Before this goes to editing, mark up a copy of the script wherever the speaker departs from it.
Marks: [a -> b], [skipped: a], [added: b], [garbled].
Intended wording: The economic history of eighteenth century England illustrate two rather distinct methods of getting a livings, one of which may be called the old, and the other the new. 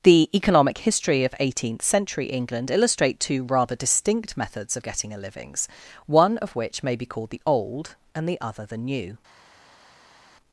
The economic history of eighteenth century England illustrate two rather distinct methods of getting a livings, one of which may be called the old, and the other the new.